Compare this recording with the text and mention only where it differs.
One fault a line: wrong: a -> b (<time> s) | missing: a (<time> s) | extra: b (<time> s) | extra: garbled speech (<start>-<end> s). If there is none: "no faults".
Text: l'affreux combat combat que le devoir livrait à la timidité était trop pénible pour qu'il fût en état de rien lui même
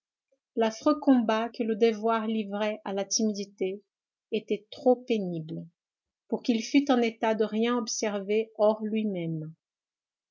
missing: combat (1.5 s)
extra: observer hors (7.8 s)